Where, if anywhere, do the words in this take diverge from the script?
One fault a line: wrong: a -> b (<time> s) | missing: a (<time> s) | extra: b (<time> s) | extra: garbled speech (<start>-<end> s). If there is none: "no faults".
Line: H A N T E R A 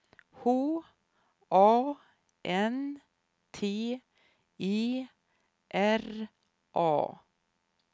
no faults